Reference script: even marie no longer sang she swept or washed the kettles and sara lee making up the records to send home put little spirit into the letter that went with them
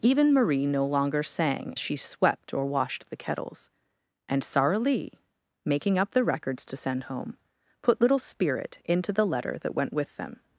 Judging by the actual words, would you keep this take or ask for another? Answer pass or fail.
pass